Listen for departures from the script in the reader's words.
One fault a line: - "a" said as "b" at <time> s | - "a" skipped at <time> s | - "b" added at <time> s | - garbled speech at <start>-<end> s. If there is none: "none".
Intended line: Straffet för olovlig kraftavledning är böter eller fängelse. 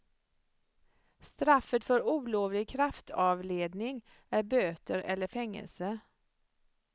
none